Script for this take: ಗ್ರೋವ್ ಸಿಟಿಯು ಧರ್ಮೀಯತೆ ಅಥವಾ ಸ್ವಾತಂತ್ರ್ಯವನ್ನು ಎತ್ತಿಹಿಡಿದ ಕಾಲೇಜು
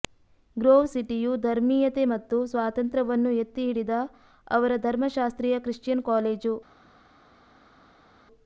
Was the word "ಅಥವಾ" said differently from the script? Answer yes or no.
yes